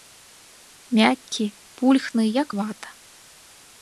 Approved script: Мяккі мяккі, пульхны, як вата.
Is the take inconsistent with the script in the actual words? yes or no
yes